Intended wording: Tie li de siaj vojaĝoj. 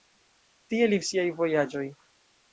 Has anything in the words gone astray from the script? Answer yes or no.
no